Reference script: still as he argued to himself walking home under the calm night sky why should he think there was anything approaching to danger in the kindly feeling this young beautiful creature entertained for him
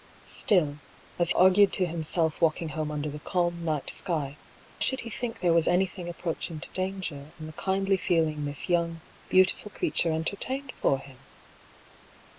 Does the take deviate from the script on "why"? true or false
true